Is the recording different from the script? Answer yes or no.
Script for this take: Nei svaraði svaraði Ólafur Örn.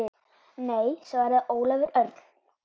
yes